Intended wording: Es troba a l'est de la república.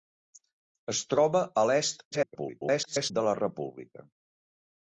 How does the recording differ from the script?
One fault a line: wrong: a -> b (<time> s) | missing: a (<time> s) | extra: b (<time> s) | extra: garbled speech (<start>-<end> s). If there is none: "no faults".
extra: garbled speech (2.1-3.1 s)